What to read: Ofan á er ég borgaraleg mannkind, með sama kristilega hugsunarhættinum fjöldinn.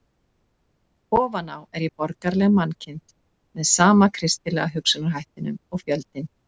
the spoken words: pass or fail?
fail